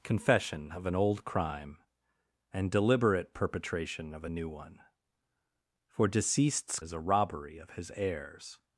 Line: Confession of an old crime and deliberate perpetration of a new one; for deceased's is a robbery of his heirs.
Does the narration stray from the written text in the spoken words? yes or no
no